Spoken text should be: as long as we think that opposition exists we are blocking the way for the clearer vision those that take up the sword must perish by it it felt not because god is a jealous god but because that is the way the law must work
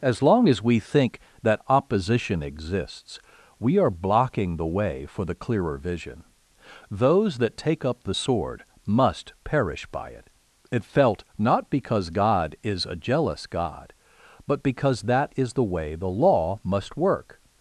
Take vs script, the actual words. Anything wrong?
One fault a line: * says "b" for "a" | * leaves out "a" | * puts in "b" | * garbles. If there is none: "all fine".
all fine